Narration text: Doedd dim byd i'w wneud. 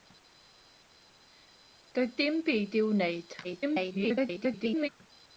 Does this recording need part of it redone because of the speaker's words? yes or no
yes